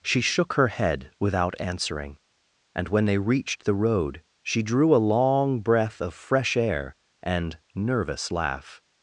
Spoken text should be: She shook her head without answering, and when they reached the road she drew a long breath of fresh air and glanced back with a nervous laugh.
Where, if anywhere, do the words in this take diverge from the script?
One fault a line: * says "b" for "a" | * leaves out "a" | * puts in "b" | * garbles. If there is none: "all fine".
* leaves out "glanced back with a"